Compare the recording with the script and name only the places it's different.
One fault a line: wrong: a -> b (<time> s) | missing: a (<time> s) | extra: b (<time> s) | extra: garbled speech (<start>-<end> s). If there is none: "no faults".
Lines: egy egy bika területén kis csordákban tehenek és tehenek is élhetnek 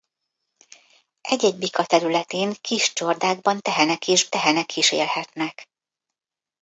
no faults